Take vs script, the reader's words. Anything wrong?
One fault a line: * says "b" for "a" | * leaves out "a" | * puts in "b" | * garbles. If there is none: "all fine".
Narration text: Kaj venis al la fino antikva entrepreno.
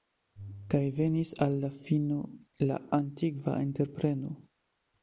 * puts in "la"